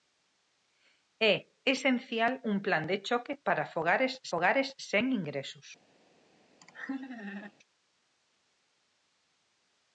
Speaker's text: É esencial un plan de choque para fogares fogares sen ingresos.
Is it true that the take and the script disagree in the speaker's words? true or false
false